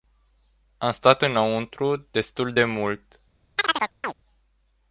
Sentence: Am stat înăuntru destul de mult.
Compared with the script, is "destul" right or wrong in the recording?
right